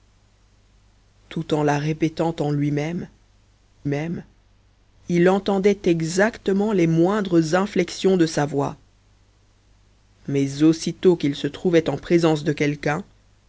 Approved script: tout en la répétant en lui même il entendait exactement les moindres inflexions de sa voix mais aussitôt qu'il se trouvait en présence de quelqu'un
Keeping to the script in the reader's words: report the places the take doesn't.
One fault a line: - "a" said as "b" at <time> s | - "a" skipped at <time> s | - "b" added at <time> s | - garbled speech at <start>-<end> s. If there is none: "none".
- "même" added at 3.9 s